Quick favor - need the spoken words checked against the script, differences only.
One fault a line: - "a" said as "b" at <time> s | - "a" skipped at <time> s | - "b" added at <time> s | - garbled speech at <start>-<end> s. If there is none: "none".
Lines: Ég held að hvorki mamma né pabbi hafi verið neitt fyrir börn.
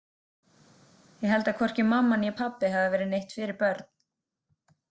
none